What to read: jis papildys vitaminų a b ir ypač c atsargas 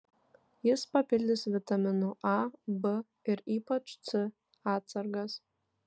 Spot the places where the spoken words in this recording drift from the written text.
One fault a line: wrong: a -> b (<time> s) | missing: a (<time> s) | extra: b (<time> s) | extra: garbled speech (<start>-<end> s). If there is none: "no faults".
no faults